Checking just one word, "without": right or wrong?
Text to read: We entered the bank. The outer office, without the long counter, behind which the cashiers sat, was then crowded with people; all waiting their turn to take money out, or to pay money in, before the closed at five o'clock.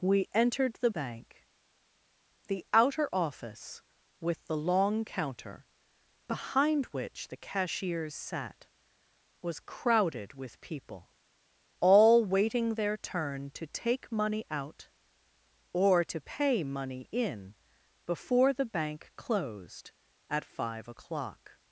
wrong